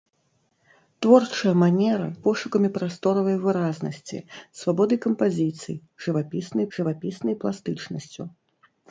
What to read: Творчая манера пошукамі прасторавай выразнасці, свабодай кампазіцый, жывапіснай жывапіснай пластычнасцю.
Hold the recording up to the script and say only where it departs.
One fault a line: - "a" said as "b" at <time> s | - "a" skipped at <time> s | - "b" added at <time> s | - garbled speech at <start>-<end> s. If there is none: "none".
none